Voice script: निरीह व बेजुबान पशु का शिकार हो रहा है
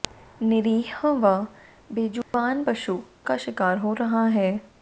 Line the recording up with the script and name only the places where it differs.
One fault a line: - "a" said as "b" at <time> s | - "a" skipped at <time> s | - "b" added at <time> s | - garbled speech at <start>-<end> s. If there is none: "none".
none